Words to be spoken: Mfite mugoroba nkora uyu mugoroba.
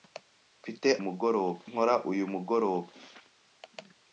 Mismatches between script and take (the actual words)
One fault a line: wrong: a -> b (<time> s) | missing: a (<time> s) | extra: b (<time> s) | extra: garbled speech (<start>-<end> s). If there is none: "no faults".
no faults